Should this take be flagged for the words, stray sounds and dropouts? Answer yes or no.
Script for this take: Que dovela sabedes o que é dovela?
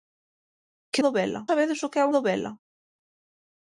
no